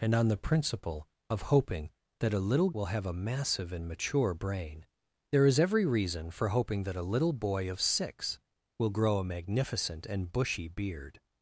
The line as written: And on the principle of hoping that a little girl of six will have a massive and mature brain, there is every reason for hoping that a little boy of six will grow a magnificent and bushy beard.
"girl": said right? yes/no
no